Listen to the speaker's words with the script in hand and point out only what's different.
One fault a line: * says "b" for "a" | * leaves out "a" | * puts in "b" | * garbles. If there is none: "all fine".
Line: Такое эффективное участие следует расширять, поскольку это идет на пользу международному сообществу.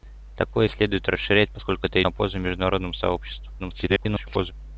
* leaves out "эффективное участие"
* leaves out "идет"
* garbles